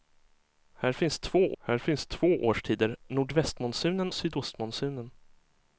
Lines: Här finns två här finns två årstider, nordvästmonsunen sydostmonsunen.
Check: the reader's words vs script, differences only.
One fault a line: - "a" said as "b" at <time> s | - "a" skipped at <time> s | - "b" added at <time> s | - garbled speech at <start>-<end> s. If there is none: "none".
none